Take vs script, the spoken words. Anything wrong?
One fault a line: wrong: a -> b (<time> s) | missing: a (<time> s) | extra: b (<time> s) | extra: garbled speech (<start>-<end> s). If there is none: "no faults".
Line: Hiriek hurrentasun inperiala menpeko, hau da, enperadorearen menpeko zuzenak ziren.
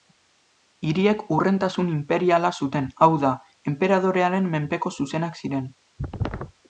wrong: menpeko -> zuten (2.6 s)